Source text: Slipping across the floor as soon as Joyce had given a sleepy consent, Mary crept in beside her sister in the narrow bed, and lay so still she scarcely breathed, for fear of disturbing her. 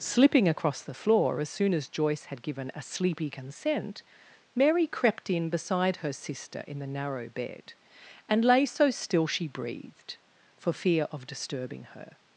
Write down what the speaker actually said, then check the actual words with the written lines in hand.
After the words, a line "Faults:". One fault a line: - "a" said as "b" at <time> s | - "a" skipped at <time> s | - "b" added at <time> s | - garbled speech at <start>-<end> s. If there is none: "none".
Slipping across the floor as soon as Joyce had given a sleepy consent, Mary crept in beside her sister in the narrow bed, and lay so still she breathed, for fear of disturbing her.
Faults:
- "scarcely" skipped at 9.5 s